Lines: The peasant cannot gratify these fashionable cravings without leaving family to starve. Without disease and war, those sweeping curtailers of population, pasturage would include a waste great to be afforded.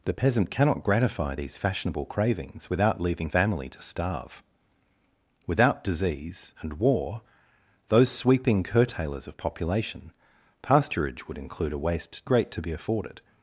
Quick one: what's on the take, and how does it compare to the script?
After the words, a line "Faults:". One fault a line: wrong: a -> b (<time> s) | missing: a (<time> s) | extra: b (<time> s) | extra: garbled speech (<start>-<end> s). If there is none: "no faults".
The peasant cannot gratify these fashionable cravings without leaving family to starve. Without disease and war, those sweeping curtailers of population, pasturage would include a waste great to be afforded.
Faults:
no faults